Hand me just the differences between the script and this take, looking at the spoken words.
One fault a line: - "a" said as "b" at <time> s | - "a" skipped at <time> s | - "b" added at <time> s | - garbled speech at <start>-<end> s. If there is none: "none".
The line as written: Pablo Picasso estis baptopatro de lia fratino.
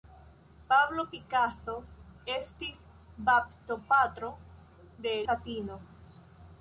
- "lia" skipped at 5.1 s